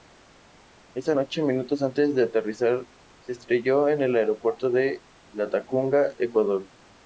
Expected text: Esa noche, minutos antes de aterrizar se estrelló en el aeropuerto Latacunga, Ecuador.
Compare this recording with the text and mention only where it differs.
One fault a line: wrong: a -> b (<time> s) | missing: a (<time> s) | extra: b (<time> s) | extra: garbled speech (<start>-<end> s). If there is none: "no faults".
extra: de (4.7 s)